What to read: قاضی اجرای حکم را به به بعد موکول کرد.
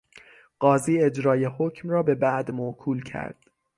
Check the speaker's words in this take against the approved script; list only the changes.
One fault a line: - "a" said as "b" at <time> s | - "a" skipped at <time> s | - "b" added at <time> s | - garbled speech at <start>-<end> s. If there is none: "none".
- "به" skipped at 2.1 s